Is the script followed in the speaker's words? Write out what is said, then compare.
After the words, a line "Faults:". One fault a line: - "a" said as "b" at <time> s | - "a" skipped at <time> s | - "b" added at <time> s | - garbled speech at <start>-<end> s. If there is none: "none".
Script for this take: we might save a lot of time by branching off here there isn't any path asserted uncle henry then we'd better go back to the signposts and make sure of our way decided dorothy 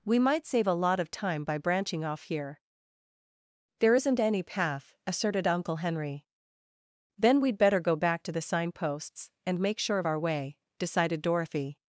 we might save a lot of time by branching off here there isn't any path asserted uncle henry then we'd better go back to the signposts and make sure of our way decided dorothy
Faults:
none